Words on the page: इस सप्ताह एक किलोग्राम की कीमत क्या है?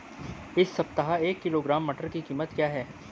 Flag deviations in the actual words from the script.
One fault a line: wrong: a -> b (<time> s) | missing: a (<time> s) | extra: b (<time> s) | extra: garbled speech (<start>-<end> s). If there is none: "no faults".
extra: मटर (1.9 s)